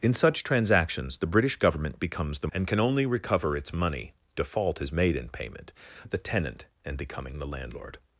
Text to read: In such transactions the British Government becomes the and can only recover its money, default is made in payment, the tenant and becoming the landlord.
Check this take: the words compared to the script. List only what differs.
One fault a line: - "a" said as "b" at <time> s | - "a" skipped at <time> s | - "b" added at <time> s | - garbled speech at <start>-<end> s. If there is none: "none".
none